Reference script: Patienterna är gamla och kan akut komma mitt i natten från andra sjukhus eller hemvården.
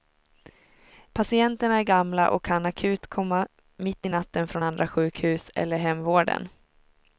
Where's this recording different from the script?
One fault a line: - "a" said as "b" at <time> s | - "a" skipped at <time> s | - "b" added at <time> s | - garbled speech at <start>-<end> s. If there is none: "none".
none